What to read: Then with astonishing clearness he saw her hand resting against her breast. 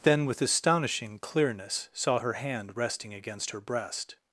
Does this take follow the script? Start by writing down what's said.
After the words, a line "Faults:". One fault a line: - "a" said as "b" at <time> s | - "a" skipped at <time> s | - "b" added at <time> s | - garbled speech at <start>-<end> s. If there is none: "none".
Then with astonishing clearness saw her hand resting against her breast.
Faults:
- "he" skipped at 1.9 s